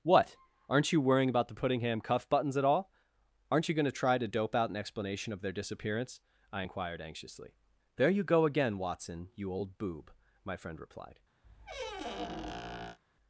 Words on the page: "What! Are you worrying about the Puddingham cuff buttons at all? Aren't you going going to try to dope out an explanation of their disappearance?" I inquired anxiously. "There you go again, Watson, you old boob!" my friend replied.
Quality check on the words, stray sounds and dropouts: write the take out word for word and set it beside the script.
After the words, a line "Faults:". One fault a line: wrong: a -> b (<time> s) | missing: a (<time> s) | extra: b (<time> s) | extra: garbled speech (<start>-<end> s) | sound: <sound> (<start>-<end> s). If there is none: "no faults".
"What! Aren't you worrying about the Puddingham cuff buttons at all? Aren't you going to try to dope out an explanation of their disappearance?" I inquired anxiously. "There you go again, Watson, you old boob!" my friend replied.
Faults:
wrong: Are -> Aren't (0.7 s)
missing: going (3.9 s)
sound: squeak (11.4-13.0 s)